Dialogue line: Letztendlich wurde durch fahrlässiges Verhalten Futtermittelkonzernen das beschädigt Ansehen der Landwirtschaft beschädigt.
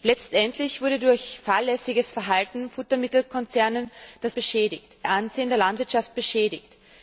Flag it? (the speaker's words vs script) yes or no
no